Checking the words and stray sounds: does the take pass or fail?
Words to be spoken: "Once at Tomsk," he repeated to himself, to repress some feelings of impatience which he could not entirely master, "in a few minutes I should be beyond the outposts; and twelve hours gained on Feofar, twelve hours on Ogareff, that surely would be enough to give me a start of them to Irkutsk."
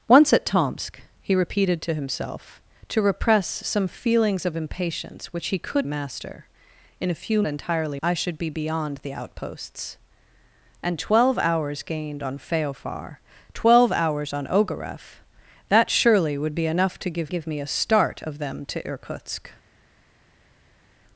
fail